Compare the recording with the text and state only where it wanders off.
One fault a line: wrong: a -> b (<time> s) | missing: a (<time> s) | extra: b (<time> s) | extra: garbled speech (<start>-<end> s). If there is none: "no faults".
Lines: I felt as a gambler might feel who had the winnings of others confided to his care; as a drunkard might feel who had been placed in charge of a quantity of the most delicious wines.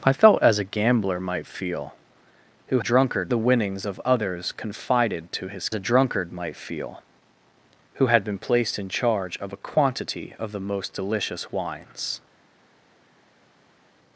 wrong: had -> drunkard (2.8 s)
missing: care as (5.7 s)